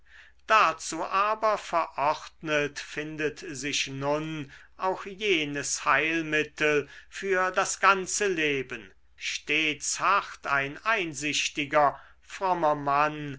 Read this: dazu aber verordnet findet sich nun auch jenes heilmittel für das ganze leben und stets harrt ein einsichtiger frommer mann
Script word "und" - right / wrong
wrong